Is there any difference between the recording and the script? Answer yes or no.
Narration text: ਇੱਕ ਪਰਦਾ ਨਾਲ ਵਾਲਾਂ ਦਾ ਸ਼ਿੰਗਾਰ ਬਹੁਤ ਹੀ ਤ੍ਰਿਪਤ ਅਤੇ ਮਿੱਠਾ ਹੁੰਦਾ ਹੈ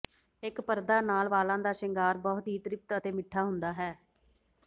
no